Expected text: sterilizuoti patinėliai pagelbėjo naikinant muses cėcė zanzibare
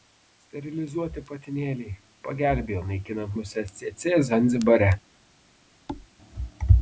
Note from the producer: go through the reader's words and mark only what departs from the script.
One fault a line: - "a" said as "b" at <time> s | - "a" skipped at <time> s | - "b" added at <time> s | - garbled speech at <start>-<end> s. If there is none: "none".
none